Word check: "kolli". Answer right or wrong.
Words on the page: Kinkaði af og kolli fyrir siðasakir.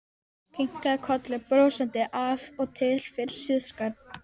wrong